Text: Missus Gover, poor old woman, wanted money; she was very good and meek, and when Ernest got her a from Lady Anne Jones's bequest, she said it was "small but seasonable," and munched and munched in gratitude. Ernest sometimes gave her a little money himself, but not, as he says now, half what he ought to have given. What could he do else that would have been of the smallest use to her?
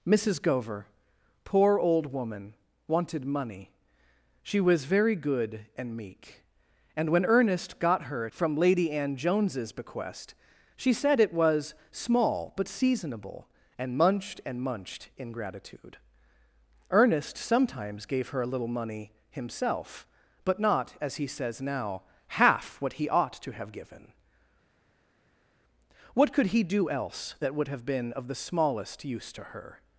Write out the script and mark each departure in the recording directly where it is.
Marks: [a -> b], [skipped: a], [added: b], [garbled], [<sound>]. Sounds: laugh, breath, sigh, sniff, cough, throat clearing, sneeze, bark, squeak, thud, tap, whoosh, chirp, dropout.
Missus Gover, poor old woman, wanted money; she was very good and meek, and when Ernest got her a from Lady Anne Jones's bequest, she said it was "small but seasonable," and munched and munched in gratitude. Ernest sometimes gave her a little money himself, but not, as he says now, half what he ought to have given. What could he do else that would have been of the smallest use to her?